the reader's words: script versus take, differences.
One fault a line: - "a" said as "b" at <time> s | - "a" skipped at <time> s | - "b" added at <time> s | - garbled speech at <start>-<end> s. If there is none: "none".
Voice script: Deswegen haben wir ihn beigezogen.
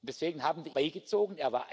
- "ihn" skipped at 0.7 s